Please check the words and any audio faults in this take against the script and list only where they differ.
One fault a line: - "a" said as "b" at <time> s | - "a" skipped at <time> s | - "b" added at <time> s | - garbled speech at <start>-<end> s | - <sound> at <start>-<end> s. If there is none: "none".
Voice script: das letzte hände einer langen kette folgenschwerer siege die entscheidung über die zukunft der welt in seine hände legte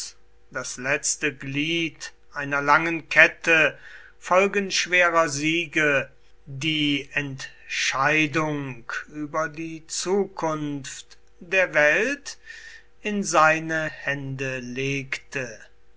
- "hände" said as "glied" at 1.3 s